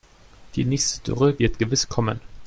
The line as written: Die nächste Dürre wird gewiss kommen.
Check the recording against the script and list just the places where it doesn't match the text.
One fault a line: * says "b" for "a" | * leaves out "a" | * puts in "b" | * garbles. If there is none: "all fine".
all fine